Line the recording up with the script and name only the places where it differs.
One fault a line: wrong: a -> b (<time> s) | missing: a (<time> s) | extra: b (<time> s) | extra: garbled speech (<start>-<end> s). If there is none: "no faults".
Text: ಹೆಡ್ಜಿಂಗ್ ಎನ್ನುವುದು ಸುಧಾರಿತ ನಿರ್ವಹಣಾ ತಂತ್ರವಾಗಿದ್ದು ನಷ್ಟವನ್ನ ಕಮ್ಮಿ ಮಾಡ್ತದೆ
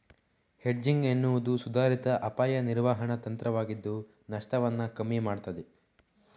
extra: ಅಪಾಯ (2.2 s)